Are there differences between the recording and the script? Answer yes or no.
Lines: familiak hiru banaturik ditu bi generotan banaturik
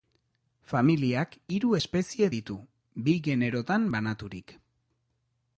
yes